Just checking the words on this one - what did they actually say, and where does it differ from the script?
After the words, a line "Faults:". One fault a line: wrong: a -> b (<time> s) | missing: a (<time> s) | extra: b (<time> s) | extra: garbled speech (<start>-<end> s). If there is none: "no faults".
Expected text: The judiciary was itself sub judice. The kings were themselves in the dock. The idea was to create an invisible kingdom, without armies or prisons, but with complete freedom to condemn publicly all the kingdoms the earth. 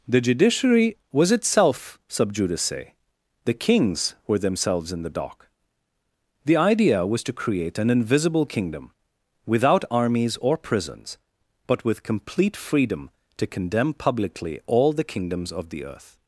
The judiciary was itself sub judice. The kings were themselves in the dock. The idea was to create an invisible kingdom, without armies or prisons, but with complete freedom to condemn publicly all the kingdoms of the earth.
Faults:
extra: of (15.5 s)